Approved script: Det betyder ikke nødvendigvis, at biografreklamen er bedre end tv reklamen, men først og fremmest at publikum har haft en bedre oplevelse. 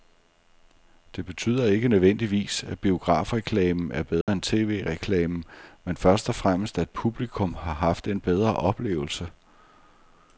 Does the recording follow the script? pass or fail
pass